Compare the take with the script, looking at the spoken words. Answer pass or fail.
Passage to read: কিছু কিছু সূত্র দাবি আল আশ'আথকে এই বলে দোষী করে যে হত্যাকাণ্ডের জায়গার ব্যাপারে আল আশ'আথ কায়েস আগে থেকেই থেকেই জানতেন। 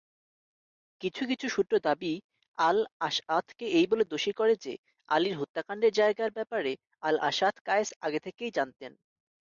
fail